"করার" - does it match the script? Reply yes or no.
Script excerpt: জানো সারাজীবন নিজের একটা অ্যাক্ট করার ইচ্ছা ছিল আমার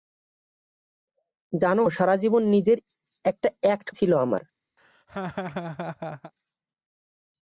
no